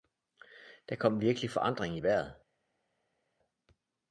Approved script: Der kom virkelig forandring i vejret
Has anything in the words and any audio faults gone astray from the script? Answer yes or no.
no